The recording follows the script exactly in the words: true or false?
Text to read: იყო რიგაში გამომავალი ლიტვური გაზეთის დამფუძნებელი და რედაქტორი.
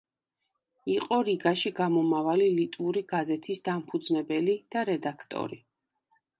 true